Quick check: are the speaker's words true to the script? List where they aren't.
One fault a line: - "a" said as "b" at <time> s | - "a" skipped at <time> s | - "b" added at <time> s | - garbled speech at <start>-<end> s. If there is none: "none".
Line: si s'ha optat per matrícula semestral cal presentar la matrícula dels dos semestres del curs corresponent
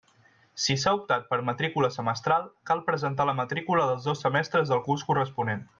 none